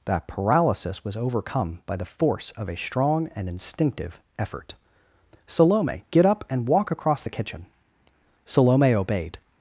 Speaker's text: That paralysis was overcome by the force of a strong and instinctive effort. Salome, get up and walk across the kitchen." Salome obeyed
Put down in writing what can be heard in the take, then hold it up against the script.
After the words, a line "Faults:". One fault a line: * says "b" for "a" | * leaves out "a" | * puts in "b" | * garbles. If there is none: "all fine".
That paralysis was overcome by the force of a strong and instinctive effort. Salome, get up and walk across the kitchen." Salome obeyed
Faults:
all fine